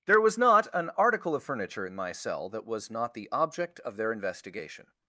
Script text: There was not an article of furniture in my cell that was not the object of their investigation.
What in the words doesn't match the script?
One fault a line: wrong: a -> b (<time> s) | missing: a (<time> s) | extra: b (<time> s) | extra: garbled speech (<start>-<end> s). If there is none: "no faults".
no faults